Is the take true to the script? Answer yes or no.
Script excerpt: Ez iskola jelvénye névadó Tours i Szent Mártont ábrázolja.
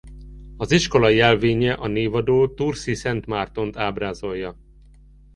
no